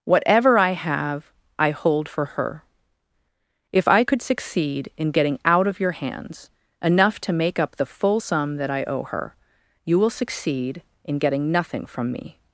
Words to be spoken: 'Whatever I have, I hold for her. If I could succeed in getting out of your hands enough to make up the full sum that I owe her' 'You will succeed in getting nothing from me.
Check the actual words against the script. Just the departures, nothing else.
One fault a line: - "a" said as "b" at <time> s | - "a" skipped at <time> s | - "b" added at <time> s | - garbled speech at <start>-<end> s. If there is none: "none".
none